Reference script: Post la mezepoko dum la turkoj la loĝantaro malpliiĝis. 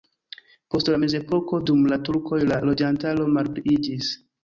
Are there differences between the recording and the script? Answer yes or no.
no